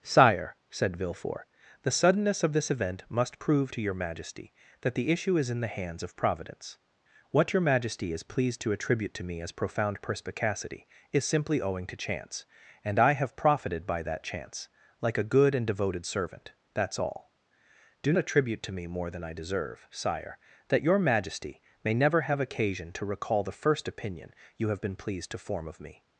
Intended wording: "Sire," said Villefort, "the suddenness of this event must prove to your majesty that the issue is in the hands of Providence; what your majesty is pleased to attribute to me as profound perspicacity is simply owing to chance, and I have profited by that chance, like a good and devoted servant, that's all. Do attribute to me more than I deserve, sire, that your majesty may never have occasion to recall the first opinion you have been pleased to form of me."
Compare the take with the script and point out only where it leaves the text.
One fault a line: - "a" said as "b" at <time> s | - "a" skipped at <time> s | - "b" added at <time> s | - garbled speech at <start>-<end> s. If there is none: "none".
none